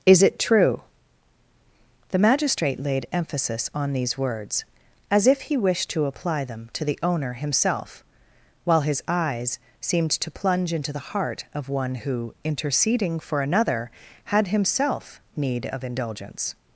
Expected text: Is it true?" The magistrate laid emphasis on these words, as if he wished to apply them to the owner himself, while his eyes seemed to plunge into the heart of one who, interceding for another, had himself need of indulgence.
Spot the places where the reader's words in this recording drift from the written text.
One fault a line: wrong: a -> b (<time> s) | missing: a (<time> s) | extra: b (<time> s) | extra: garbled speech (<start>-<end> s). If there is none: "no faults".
no faults